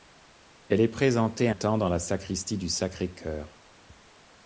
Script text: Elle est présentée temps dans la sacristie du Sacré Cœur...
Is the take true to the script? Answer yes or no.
yes